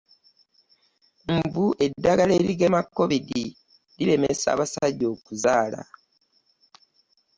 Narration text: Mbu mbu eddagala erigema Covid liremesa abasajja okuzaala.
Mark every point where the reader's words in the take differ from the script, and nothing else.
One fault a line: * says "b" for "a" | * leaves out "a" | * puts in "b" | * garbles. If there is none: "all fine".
* leaves out "mbu"